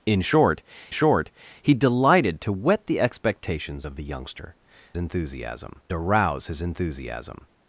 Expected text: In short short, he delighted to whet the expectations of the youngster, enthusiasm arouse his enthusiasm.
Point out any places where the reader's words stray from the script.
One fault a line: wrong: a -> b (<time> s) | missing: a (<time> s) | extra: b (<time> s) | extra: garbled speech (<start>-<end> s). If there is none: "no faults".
no faults